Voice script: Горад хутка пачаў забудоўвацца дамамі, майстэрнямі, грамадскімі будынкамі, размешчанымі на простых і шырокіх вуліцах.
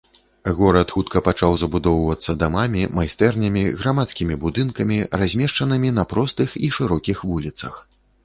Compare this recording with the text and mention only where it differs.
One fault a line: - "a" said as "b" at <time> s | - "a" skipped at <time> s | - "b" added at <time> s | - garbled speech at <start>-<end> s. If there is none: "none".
none